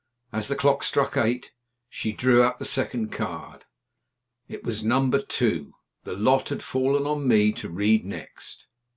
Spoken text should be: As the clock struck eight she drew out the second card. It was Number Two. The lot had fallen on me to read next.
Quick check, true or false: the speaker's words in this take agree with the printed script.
true